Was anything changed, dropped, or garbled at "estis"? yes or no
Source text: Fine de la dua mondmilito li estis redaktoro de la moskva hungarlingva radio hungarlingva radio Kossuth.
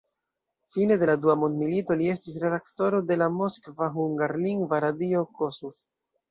no